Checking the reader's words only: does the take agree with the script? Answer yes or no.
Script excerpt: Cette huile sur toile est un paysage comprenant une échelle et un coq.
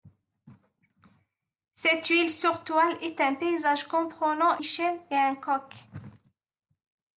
no